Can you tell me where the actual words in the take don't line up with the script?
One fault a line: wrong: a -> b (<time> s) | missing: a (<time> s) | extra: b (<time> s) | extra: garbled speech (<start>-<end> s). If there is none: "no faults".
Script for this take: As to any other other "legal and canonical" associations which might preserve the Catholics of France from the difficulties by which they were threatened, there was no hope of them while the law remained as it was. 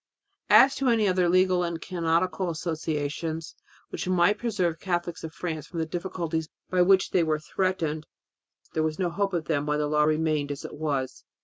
missing: other (1.3 s)